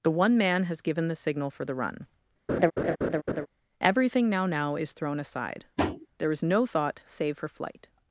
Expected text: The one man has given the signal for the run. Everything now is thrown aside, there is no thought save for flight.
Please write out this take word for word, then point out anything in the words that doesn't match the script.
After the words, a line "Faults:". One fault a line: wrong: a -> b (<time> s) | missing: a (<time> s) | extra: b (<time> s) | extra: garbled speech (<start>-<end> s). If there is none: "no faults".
The one man has given the signal for the run. Everything now now is thrown aside, there is no thought save for flight.
Faults:
extra: now (4.5 s)